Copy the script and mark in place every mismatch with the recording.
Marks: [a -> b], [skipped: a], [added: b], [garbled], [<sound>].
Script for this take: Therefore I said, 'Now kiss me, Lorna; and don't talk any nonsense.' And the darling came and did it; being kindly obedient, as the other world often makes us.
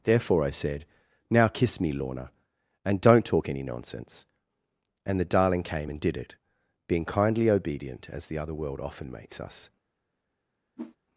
Therefore I said, 'Now kiss me, Lorna; and don't talk any nonsense.' And the darling came and did it; being kindly obedient, as the other world often makes us. [whoosh]